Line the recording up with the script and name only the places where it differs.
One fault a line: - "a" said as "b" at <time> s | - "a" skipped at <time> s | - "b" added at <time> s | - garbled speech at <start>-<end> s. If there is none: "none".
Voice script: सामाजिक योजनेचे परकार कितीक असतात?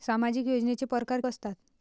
- "कितीक" skipped at 1.2 s